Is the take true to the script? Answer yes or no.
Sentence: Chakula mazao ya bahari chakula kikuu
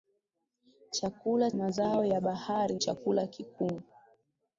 yes